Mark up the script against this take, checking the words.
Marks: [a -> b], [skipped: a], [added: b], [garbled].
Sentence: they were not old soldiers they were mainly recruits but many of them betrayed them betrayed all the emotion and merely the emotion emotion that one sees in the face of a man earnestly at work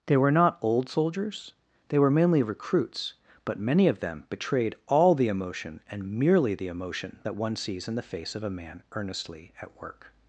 they were not old soldiers they were mainly recruits but many of them betrayed [skipped: them betrayed] all the emotion and merely the emotion [skipped: emotion] that one sees in the face of a man earnestly at work